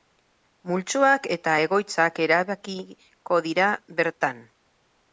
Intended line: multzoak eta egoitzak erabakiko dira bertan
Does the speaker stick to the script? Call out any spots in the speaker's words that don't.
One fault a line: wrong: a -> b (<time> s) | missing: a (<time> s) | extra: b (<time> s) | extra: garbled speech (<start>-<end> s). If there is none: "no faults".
no faults